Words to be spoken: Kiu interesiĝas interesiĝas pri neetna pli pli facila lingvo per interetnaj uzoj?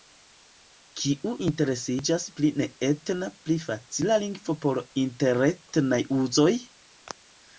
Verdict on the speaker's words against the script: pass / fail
fail